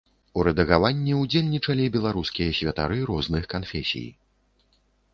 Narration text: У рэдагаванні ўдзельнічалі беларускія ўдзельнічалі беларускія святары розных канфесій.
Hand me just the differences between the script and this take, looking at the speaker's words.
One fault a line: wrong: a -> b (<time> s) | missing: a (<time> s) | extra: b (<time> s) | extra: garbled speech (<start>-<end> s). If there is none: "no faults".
missing: ўдзельнічалі беларускія (2.6 s)